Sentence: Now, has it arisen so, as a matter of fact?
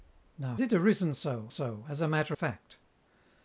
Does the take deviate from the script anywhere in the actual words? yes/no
yes